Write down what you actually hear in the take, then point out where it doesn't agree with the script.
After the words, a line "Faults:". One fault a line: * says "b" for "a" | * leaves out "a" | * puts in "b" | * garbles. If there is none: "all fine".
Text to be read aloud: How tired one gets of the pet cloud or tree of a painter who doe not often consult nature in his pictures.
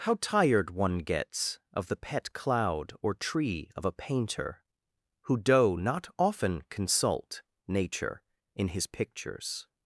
How tired one gets of the pet cloud or tree of a painter who doe not often consult nature in his pictures.
Faults:
all fine